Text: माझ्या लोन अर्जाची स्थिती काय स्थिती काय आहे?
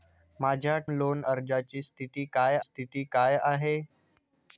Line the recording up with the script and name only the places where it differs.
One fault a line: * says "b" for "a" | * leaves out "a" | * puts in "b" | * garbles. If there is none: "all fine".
all fine